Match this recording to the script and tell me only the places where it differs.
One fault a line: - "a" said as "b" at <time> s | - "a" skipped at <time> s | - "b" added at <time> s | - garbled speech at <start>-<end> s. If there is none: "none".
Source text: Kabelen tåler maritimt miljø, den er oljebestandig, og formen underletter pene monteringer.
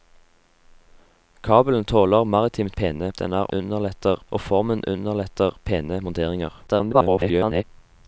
- "miljø" said as "pene" at 2.7 s
- "oljebestandig" said as "underletter" at 3.5 s
- garbled speech at 6.7-7.6 s